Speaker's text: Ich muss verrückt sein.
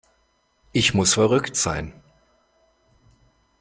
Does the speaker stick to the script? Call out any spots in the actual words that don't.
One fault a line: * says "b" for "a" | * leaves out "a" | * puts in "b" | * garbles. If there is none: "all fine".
all fine